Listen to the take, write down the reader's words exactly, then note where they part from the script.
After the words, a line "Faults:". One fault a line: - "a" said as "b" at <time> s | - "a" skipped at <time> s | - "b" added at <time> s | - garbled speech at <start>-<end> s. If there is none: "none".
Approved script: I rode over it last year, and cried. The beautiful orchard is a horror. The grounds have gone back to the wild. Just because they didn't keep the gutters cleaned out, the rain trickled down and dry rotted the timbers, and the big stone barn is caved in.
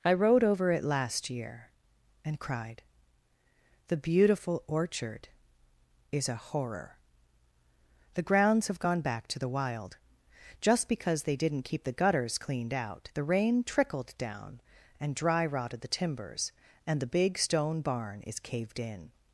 I rode over it last year, and cried. The beautiful orchard is a horror. The grounds have gone back to the wild. Just because they didn't keep the gutters cleaned out, the rain trickled down and dry rotted the timbers, and the big stone barn is caved in.
Faults:
none